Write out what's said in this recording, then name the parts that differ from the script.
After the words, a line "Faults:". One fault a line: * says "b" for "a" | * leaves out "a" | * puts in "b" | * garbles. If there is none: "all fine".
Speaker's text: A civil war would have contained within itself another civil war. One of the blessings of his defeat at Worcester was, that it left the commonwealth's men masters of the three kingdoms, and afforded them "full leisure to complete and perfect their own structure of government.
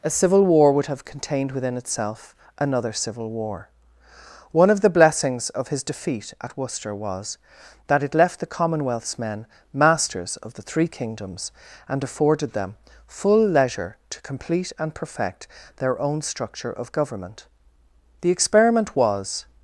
A civil war would have contained within itself another civil war. One of the blessings of his defeat at Worcester was, that it left the commonwealth's men masters of the three kingdoms, and afforded them "full leisure to complete and perfect their own structure of government. The experiment was
Faults:
* puts in "The experiment was"